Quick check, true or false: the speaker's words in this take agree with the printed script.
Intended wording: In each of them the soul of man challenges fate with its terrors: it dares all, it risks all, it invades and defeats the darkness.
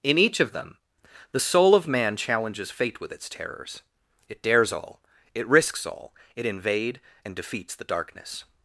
false